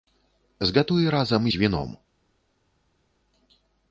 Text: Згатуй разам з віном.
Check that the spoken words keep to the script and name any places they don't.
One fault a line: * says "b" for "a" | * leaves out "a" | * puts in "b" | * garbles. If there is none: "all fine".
all fine